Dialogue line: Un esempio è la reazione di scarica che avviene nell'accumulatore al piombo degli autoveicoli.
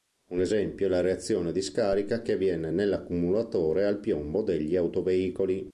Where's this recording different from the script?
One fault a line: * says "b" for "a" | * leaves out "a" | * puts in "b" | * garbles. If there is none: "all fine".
all fine